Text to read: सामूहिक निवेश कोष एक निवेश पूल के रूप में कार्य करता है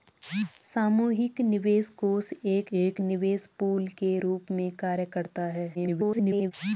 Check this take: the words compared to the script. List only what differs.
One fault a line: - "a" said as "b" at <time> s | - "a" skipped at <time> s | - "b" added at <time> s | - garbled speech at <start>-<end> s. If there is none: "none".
- "एक" added at 2.8 s
- garbled speech at 5.7-6.5 s